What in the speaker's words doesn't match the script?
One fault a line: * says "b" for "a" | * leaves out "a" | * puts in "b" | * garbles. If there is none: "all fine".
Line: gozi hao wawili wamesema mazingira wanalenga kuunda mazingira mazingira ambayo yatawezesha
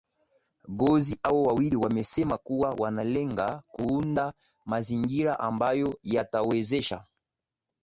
* says "kuwa" for "mazingira"
* leaves out "mazingira"